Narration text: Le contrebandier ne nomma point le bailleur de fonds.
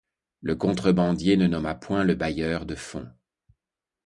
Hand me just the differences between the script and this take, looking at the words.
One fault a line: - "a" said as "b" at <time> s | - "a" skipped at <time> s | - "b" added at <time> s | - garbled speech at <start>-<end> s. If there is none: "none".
none